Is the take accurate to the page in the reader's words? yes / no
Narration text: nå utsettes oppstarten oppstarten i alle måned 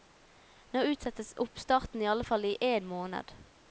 no